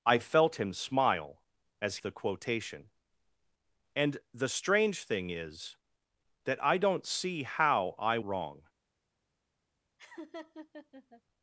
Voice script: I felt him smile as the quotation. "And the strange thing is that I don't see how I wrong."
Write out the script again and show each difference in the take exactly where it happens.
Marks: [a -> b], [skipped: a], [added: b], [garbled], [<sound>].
I felt him smile as the quotation. "And the strange thing is that I don't see how I wrong." [laugh]